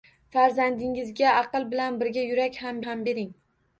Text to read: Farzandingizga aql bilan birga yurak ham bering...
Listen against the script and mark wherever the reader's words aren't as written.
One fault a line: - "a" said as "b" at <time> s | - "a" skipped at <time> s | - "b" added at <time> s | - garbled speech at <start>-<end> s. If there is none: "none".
- "ham" added at 2.9 s